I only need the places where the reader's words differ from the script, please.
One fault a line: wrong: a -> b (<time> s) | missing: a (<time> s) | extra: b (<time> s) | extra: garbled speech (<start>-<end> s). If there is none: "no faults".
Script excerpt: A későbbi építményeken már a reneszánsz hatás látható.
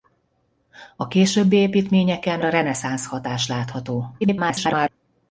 missing: már (2.5 s)
extra: garbled speech (4.2-4.9 s)